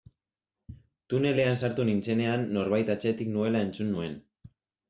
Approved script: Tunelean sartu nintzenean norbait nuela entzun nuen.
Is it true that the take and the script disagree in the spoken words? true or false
true